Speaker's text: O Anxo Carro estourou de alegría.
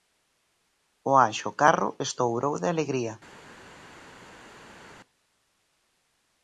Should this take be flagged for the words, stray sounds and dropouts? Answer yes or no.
no